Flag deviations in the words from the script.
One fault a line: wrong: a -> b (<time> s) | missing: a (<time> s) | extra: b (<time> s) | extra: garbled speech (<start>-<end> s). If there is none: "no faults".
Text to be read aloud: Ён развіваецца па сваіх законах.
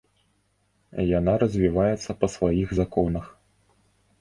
wrong: Ён -> Яна (1.2 s)